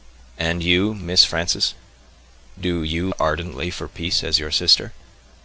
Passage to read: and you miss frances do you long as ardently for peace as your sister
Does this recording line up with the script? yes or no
no